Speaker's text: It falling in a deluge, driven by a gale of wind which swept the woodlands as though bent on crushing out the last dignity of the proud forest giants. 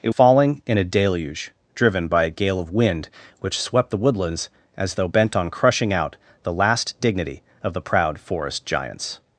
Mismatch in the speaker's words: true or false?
false